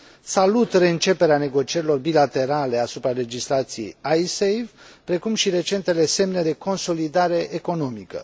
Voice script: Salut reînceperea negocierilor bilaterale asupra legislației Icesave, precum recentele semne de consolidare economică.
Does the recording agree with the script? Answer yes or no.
no